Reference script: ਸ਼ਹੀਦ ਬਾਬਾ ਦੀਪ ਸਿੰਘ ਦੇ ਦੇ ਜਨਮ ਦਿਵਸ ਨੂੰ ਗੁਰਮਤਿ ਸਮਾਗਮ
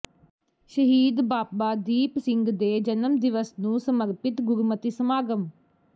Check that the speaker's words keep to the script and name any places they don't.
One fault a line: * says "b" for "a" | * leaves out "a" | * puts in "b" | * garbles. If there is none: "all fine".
* leaves out "ਦੇ"
* puts in "ਸਮਰਪਿਤ"